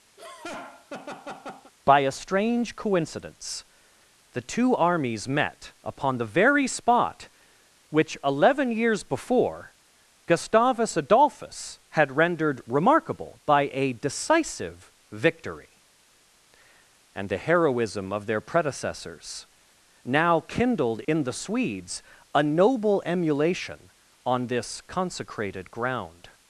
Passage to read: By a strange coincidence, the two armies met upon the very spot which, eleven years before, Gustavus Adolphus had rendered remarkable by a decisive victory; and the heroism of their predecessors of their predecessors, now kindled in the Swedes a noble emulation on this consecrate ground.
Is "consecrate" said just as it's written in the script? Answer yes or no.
no